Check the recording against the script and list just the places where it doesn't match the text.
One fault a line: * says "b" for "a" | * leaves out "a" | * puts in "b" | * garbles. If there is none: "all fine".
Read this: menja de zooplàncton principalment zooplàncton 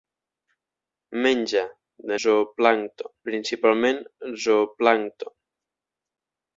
all fine